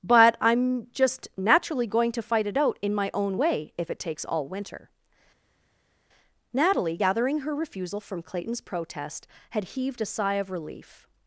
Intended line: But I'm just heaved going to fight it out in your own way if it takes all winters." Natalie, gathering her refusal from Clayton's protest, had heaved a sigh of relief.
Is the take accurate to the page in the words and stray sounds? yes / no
no